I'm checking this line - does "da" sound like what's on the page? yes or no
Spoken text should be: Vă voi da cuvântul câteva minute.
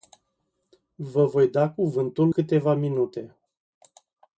yes